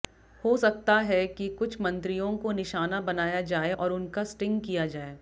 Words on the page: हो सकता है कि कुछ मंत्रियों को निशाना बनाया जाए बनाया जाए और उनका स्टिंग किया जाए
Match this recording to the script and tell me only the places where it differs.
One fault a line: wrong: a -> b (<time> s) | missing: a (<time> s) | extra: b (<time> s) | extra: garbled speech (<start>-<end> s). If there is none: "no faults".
missing: बनाया जाए (3.7 s)